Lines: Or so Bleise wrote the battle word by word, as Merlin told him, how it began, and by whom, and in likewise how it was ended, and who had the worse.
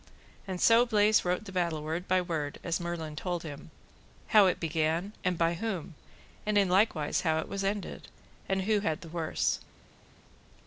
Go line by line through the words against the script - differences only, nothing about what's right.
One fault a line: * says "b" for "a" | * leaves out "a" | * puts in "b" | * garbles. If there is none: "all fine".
* says "And" for "Or"